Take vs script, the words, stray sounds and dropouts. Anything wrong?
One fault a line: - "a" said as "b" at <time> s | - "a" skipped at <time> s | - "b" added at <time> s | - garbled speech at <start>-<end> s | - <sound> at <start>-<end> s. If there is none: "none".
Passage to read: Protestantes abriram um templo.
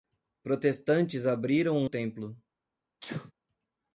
- sneeze at 3.0-3.3 s